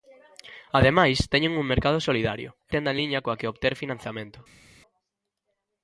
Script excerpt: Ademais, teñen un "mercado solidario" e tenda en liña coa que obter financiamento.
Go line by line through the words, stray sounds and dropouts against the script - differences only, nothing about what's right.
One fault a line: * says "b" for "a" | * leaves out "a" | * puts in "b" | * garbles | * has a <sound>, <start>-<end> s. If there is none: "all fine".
all fine